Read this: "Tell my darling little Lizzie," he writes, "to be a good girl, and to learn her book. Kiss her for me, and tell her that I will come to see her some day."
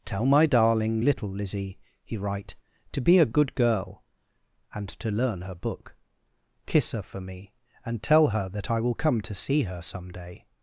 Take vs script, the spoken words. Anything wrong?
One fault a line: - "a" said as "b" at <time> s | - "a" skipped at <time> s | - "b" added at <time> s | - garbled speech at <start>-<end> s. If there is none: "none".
- "writes" said as "write" at 2.2 s